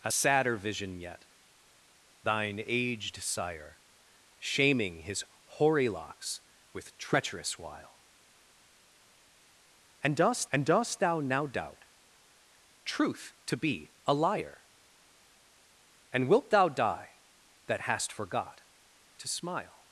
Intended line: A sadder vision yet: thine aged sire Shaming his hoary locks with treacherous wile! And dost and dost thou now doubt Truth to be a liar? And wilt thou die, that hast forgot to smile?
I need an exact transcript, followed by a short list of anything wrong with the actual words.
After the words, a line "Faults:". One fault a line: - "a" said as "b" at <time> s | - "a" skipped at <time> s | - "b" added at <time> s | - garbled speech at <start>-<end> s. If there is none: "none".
A sadder vision yet: thine aged sire Shaming his hoary locks with treacherous wile! And dost and dost thou now doubt Truth to be a liar? And wilt thou die, that hast forgot to smile?
Faults:
none